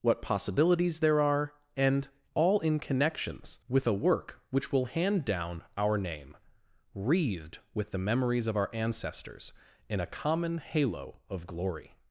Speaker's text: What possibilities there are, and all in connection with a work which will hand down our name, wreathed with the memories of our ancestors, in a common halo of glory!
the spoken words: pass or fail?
fail